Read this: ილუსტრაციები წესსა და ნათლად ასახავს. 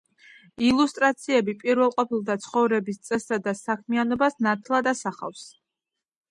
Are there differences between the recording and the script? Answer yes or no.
yes